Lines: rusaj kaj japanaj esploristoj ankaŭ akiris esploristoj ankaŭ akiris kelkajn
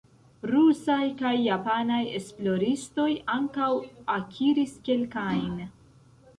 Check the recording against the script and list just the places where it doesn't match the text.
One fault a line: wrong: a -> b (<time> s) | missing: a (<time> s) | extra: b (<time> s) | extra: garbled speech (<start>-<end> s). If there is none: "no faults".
missing: esploristoj ankaŭ akiris (4.8 s)